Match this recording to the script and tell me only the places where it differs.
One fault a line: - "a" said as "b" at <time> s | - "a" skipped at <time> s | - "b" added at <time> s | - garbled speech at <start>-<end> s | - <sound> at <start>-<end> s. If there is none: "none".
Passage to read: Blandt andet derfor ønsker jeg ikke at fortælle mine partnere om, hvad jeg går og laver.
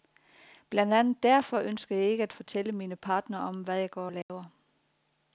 - dropout at 4.2-4.3 s